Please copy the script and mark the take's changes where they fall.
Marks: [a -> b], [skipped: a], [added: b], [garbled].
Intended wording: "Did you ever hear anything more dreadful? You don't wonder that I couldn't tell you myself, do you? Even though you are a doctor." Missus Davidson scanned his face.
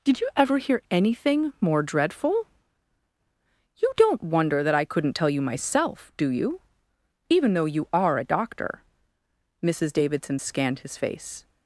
"Did you ever hear anything more dreadful? You don't wonder that I couldn't tell you myself, do you? Even though you are a doctor." Missus Davidson scanned his face.